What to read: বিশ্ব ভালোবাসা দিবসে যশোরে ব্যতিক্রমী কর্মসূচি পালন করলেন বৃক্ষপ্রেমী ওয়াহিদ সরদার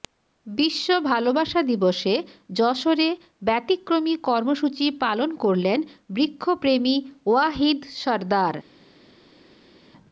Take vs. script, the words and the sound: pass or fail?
pass